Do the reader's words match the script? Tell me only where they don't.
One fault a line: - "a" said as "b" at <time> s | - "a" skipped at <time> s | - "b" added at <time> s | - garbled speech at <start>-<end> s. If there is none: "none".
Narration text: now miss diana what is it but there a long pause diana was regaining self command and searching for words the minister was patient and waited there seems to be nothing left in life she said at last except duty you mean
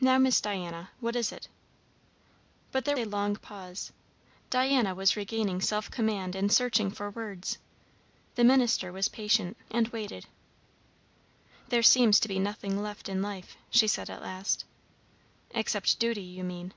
none